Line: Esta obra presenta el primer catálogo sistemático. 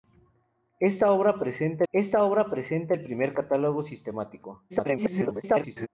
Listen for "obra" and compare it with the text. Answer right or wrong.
right